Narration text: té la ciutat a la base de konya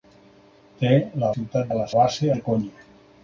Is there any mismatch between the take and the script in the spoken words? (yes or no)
no